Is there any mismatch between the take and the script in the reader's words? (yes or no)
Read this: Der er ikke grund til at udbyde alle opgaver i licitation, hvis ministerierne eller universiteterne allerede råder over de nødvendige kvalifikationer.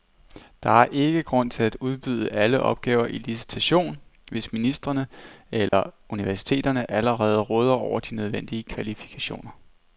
no